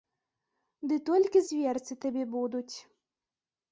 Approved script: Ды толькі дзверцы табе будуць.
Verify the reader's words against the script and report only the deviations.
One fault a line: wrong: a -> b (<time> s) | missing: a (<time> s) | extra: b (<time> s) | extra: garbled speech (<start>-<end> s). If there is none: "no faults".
no faults